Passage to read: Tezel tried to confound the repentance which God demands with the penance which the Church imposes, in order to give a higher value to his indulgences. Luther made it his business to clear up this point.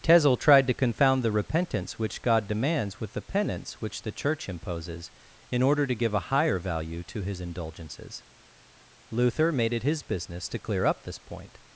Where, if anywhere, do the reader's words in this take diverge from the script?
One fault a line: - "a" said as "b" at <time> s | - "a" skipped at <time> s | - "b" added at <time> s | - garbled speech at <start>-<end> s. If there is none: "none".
none